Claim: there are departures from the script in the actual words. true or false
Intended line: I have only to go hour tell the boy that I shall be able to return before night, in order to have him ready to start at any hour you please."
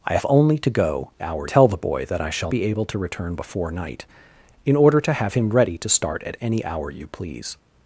false